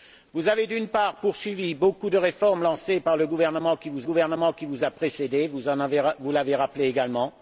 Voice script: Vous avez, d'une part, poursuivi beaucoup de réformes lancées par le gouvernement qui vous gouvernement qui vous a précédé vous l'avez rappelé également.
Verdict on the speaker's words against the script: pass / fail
pass